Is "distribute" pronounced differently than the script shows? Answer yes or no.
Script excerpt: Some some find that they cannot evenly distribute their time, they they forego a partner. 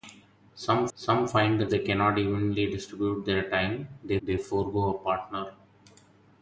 no